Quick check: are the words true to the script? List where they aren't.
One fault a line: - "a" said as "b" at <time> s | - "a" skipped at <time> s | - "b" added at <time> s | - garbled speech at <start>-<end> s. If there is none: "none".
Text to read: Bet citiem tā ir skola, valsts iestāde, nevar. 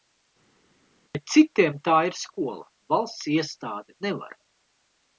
none